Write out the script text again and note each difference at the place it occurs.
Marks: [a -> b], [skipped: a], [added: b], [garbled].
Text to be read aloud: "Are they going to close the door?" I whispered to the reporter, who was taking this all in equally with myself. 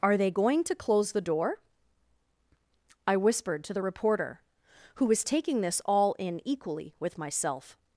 "Are they going to close the door?" I whispered to the reporter, who was taking this all in equally with myself.